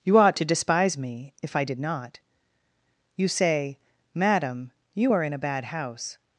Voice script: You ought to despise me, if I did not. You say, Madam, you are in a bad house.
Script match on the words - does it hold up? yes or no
yes